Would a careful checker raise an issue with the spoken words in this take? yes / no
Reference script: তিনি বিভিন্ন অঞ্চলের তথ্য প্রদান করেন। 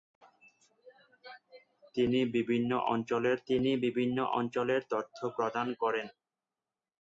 yes